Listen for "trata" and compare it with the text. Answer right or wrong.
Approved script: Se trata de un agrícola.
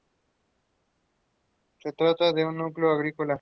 right